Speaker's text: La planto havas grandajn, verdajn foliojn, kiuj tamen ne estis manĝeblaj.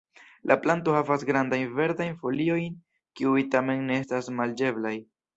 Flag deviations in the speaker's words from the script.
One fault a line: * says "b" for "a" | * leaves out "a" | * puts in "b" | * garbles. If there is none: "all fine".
* says "estas" for "estis"